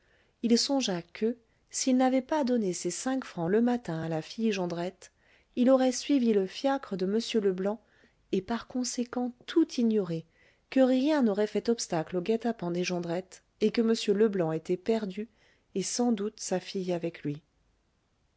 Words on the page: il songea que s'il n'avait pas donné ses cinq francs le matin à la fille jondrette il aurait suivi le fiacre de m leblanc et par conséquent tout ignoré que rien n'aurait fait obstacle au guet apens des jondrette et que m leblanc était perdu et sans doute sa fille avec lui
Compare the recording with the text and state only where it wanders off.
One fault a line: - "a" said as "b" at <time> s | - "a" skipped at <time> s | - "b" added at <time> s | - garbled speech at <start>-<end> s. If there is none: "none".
none